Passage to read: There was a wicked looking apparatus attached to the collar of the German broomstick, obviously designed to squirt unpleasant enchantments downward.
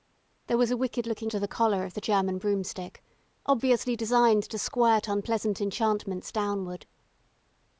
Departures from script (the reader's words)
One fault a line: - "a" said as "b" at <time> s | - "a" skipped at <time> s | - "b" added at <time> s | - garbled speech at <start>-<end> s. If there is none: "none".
- "apparatus attached" skipped at 1.3 s